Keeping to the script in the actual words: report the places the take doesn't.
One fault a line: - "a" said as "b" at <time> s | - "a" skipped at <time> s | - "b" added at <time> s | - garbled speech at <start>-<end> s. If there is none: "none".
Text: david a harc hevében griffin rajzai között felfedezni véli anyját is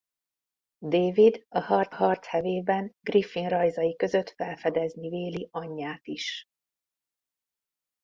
- "harc" added at 1.9 s